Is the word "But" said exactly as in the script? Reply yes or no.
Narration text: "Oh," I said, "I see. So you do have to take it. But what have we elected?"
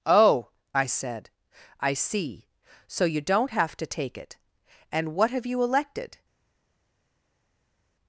no